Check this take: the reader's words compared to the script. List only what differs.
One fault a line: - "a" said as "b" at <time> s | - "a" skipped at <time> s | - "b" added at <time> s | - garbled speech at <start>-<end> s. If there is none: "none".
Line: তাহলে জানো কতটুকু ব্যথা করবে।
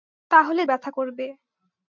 - "জানো কতটুকু" skipped at 0.6 s